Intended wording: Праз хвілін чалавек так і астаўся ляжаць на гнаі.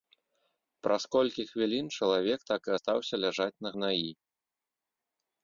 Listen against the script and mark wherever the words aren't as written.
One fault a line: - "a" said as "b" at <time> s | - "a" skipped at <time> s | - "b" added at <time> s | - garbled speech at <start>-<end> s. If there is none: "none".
- "колькі" added at 1.1 s